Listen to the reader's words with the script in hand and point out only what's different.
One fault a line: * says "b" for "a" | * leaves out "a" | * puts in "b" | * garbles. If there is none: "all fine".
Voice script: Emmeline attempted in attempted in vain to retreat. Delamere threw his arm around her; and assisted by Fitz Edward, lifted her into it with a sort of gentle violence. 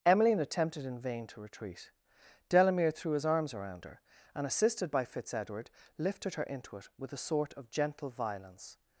* leaves out "attempted in"
* says "arms" for "arm"